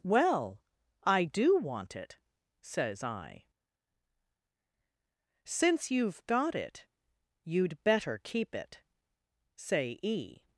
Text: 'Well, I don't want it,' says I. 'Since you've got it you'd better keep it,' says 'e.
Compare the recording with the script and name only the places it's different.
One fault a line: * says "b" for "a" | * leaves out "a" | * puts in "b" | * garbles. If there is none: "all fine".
* says "do" for "don't"
* says "say" for "says"